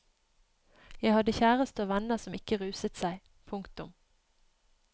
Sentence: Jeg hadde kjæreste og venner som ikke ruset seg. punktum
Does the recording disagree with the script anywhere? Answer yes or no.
no